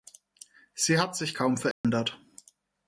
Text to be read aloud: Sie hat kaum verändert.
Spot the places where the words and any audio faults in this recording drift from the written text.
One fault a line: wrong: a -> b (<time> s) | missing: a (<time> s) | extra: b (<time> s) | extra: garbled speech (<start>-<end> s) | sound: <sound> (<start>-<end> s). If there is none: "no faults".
extra: sich (1.1 s)
sound: dropout (1.7-1.8 s)